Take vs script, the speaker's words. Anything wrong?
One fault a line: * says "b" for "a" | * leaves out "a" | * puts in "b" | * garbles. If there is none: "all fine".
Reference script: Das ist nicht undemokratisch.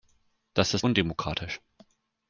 * leaves out "nicht"